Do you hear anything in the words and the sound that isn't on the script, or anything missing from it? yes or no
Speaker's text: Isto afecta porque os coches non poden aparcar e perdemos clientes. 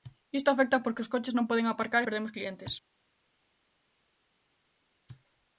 no